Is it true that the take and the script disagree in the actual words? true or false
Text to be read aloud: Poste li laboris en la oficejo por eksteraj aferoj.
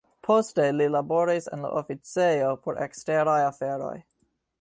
false